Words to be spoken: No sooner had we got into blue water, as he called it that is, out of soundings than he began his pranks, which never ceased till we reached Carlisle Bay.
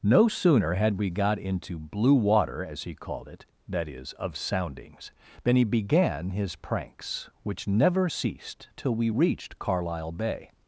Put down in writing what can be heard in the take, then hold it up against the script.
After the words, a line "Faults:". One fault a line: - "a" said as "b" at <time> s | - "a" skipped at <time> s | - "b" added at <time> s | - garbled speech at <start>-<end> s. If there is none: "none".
No sooner had we got into blue water, as he called it that is, of soundings than he began his pranks, which never ceased till we reached Carlisle Bay.
Faults:
- "out" skipped at 4.1 s